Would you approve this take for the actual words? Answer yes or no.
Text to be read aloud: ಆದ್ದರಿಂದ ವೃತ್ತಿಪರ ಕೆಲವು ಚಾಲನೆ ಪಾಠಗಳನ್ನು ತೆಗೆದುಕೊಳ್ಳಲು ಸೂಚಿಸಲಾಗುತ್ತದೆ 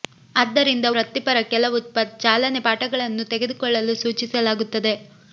yes